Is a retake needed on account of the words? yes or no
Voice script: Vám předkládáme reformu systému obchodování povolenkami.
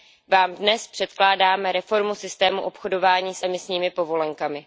yes